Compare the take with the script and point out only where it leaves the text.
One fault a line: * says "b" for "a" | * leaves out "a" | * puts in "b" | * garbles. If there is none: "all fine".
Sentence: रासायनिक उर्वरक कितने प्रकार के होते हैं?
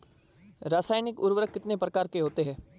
all fine